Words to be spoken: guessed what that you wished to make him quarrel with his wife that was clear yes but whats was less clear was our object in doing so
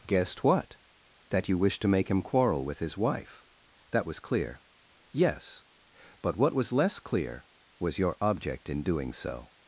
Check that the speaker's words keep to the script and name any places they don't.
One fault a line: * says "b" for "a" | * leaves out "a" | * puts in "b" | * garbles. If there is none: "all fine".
* says "what" for "whats"
* says "your" for "our"